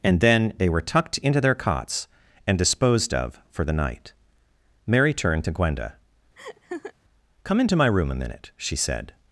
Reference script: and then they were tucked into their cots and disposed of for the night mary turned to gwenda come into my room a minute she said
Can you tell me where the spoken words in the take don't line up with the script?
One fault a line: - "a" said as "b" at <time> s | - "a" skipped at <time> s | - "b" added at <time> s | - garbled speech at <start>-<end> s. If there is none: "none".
none